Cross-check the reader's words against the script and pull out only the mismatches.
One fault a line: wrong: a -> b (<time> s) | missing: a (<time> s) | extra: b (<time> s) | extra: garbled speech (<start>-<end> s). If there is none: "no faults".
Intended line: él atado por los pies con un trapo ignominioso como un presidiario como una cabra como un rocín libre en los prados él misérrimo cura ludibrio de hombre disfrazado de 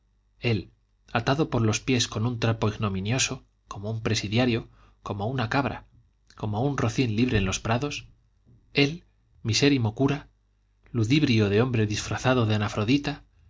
no faults